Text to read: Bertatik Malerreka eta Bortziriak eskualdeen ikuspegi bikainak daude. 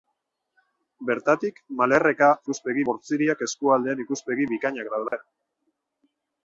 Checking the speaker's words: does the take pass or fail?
fail